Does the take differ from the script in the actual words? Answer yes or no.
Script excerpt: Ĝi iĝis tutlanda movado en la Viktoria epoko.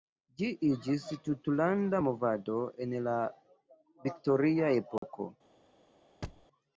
no